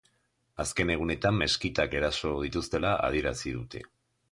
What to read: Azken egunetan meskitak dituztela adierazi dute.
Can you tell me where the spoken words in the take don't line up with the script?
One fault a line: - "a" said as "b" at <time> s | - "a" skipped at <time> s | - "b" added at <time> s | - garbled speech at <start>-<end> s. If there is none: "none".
- "eraso" added at 2.0 s